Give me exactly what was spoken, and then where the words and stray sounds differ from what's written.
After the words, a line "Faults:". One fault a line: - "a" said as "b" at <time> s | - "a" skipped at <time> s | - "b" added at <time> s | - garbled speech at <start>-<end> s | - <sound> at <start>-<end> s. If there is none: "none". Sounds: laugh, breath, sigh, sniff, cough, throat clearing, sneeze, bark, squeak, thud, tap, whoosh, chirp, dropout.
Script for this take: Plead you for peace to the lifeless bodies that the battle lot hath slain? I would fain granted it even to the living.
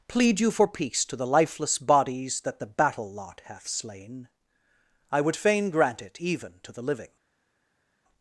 Plead you for peace to the lifeless bodies that the battle lot hath slain? I would fain grant it even to the living.
Faults:
- "granted" said as "grant" at 5.7 s